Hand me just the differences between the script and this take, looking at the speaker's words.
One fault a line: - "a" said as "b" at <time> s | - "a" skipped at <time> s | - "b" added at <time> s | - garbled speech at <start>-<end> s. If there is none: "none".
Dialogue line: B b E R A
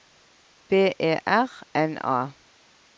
- "b" skipped at 0.9 s
- "N" added at 1.8 s